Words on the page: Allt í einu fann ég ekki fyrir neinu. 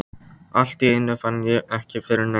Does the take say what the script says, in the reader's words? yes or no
yes